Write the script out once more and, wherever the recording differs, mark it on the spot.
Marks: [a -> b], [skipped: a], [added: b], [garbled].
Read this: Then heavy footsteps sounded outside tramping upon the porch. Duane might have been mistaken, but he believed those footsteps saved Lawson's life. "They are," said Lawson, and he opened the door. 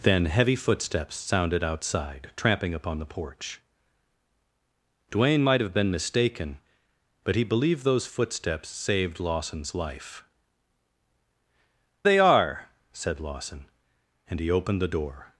Then heavy footsteps sounded outside tramping upon the porch. Duane might have been mistaken, but he believed those footsteps saved Lawson's life. "They are," said Lawson, and he opened the door.